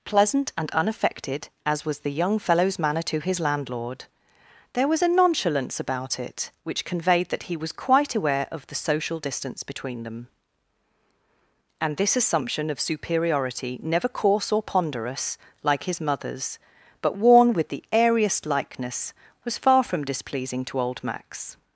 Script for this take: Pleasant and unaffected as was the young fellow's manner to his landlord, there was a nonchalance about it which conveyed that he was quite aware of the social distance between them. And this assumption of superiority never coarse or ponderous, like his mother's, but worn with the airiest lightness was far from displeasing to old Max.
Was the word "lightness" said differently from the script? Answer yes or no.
yes